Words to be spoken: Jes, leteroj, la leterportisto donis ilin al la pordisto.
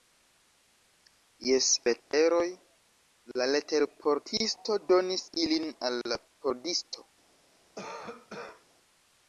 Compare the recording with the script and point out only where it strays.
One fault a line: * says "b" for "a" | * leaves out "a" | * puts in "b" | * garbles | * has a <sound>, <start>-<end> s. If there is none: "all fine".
* has a dropout, 2.0-2.1 s
* has a cough, 7.8-8.6 s